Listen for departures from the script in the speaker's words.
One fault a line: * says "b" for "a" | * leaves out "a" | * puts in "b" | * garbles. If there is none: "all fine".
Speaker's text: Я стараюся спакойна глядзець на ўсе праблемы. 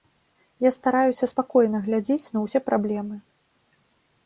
all fine